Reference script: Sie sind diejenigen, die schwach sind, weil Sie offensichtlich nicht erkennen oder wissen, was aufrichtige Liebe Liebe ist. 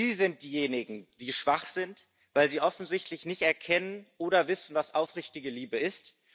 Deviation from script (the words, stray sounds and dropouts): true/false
true